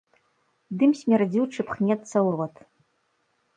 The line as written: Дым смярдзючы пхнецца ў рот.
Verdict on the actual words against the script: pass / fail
pass